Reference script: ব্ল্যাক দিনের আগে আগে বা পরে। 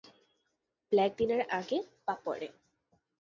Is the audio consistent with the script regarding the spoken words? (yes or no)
no